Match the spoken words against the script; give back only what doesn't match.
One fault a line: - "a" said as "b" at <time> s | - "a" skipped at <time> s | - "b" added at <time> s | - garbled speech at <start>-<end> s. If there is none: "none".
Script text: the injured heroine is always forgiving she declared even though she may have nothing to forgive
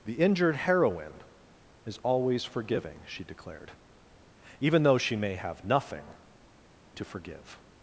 none